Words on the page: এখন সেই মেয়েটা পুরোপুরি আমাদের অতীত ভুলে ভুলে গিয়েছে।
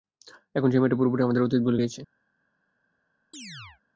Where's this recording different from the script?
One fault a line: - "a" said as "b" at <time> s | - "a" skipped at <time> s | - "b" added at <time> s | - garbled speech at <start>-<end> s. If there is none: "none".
- "ভুলে" skipped at 1.8 s